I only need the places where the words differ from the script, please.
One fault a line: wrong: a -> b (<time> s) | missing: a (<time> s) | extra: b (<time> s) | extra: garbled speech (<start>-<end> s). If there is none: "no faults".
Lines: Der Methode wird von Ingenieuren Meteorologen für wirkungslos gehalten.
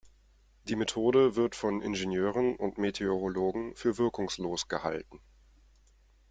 wrong: Der -> Die (0.6 s)
extra: und (2.5 s)